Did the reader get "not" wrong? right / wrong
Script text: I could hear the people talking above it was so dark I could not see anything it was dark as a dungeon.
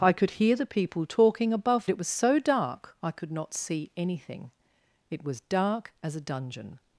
right